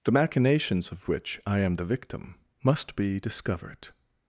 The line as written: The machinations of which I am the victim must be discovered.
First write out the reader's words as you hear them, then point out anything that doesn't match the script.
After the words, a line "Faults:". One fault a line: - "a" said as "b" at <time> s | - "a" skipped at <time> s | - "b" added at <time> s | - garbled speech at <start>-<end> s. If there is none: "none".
The machinations of which I am the victim must be discovered.
Faults:
none